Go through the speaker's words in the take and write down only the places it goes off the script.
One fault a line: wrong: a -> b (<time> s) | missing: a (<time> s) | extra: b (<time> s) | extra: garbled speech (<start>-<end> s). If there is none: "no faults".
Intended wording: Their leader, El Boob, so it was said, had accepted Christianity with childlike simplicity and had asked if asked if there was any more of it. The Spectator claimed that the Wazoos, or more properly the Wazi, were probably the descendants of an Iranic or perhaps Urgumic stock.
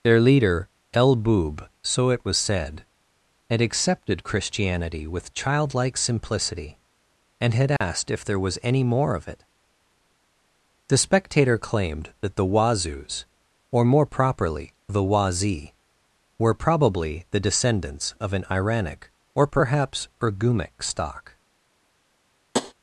missing: asked if (8.2 s)